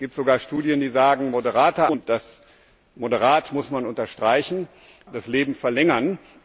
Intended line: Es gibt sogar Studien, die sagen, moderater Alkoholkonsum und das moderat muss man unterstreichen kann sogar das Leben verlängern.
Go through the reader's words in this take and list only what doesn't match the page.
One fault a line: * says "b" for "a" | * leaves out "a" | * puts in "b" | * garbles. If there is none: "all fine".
* leaves out "Alkoholkonsum"
* leaves out "kann sogar"